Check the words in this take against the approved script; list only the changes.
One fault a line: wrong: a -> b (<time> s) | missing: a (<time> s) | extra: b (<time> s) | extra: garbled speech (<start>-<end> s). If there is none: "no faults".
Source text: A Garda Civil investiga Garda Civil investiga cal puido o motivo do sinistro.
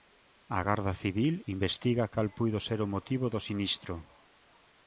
missing: Garda Civil investiga (2.1 s)
extra: ser (2.7 s)